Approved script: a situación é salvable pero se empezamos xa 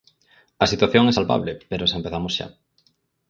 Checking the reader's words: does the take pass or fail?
pass